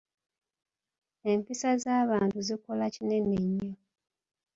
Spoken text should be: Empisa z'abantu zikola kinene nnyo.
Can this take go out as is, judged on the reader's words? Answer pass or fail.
pass